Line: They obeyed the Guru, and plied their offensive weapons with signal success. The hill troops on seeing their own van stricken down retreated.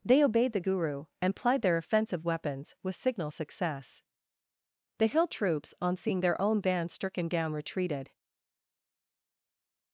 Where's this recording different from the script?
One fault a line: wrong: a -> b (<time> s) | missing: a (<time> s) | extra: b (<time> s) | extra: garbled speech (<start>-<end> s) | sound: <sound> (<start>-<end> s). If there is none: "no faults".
wrong: van -> band (6.6 s)